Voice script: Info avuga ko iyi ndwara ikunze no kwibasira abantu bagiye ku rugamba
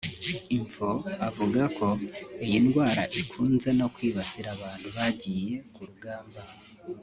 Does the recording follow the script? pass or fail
pass